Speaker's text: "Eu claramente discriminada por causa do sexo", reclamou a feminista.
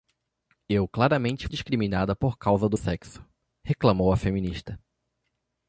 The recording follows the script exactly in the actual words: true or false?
true